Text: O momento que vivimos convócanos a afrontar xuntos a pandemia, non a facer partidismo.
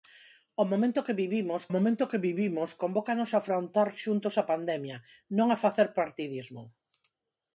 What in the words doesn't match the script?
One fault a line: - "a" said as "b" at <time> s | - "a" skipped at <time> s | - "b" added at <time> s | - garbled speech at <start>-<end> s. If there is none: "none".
- "momento que vivimos" added at 1.7 s